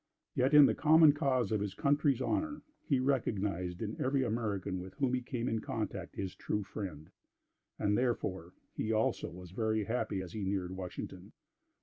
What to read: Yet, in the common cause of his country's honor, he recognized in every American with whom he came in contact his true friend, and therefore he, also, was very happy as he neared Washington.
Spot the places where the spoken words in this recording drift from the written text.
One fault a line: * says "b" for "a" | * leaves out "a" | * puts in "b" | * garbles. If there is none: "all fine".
all fine